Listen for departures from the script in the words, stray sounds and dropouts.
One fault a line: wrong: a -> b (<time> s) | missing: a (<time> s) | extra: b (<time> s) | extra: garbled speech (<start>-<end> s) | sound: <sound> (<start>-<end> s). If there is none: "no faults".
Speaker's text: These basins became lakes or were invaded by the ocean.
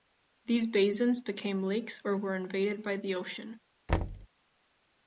sound: thud (3.9-4.3 s)